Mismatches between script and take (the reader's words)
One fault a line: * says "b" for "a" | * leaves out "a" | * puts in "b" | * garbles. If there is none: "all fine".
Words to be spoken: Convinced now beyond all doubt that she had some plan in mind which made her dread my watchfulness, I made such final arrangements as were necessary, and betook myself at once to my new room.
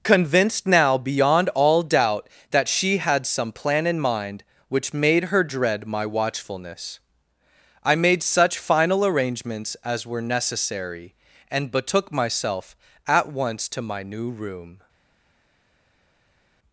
all fine